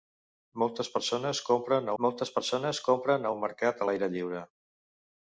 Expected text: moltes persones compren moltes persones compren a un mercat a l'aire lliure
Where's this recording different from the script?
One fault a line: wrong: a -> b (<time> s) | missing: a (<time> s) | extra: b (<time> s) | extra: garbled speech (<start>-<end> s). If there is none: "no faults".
no faults